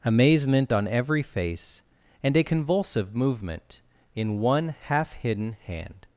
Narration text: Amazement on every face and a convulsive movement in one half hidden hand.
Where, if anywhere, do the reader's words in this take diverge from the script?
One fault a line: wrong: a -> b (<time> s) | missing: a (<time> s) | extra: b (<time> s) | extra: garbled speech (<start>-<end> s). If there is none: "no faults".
no faults